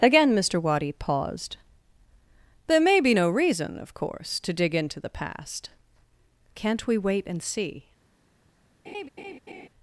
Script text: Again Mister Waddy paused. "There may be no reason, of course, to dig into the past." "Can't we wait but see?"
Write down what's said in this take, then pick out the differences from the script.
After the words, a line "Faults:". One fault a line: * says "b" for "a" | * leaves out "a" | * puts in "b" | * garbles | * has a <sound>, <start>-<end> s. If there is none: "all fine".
Again Mister Waddy paused. "There may be no reason, of course, to dig into the past." "Can't we wait and see?"
Faults:
* says "and" for "but"
* has a laugh, 8.8-9.7 s